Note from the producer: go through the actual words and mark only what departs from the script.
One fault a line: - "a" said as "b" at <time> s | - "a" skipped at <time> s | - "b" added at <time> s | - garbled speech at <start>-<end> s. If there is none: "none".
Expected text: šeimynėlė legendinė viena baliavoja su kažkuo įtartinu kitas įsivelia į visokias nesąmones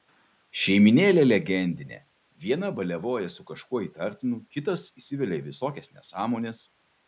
none